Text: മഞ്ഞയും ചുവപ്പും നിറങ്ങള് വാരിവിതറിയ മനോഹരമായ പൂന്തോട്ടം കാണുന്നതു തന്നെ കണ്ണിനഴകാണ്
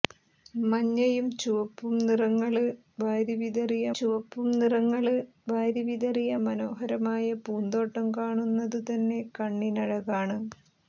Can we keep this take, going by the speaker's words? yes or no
no